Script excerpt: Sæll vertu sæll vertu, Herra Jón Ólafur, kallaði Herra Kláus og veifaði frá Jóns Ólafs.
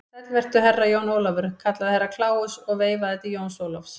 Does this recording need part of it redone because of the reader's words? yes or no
yes